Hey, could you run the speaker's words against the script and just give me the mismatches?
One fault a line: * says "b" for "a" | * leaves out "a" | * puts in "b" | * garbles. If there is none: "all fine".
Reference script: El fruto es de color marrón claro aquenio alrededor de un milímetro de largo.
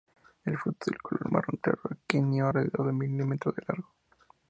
all fine